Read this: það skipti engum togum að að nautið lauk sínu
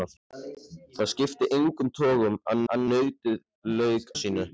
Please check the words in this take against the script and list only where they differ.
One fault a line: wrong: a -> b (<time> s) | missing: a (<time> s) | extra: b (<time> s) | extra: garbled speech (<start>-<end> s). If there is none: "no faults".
no faults